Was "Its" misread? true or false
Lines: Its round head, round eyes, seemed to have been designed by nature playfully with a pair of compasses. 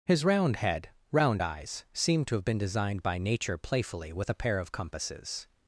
true